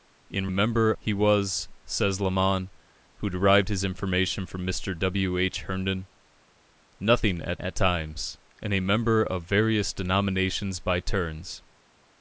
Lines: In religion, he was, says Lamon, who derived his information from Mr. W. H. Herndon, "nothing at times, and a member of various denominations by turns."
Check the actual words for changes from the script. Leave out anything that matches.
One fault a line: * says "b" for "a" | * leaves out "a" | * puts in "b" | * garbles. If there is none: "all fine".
* says "member" for "religion"
* puts in "at"